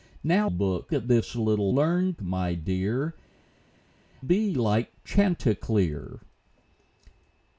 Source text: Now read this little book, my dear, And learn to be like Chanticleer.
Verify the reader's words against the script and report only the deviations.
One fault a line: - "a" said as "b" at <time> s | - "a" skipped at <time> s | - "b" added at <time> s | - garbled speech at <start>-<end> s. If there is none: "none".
- "read" said as "book" at 0.5 s
- "book" said as "learn" at 1.7 s
- "And learn to" skipped at 3.1 s